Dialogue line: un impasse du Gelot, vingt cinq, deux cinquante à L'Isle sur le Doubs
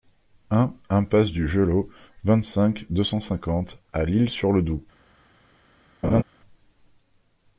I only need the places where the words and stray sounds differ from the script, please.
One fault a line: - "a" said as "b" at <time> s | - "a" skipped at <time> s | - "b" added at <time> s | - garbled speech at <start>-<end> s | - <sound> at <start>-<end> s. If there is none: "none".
- "cent" added at 3.0 s
- laugh at 6.0-6.2 s